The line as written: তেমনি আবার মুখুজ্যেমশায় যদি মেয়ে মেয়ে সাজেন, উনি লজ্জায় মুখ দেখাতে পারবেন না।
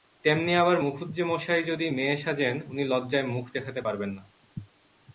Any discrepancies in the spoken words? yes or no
yes